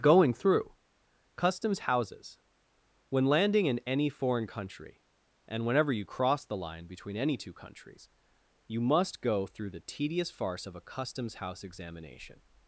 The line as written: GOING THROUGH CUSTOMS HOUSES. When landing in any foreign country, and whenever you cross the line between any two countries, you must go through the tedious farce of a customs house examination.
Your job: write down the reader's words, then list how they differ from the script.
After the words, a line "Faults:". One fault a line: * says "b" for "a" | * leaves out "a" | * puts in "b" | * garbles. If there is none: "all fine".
GOING THROUGH CUSTOMS HOUSES. When landing in any foreign country, and whenever you cross the line between any two countries, you must go through the tedious farce of a customs house examination.
Faults:
all fine